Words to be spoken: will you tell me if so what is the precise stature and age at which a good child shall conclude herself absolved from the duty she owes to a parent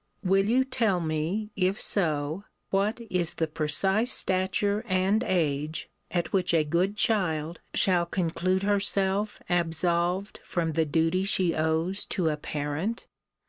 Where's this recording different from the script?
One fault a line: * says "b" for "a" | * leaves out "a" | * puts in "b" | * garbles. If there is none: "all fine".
all fine